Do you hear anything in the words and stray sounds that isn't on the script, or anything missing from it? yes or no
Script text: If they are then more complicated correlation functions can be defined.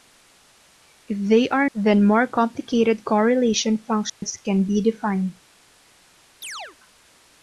yes